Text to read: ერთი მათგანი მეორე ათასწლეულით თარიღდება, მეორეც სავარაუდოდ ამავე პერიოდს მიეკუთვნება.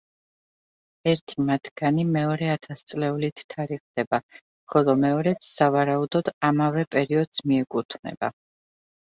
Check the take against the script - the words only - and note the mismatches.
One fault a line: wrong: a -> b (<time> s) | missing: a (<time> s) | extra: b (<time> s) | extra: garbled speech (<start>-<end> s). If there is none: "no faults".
extra: ხოლო (4.7 s)